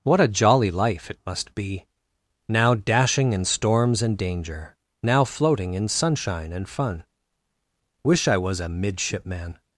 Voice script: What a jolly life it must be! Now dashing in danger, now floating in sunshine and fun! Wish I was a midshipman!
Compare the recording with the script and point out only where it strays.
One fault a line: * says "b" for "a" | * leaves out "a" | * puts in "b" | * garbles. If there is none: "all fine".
* puts in "storms and"